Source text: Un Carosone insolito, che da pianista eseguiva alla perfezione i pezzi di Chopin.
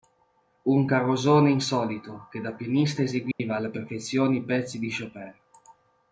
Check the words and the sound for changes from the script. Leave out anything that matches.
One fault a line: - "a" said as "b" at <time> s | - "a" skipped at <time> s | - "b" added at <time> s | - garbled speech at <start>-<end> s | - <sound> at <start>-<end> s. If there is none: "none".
- dropout at 3.3-3.4 s